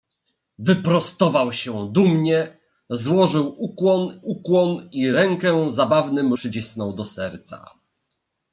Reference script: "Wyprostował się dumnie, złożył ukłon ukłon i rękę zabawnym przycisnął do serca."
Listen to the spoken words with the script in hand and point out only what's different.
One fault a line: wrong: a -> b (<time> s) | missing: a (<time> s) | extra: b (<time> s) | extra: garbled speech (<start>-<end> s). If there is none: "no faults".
no faults